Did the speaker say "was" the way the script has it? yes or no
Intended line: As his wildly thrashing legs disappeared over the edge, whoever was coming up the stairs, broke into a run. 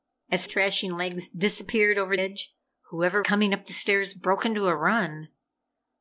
no